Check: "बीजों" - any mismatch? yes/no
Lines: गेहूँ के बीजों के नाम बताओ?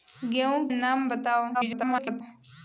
yes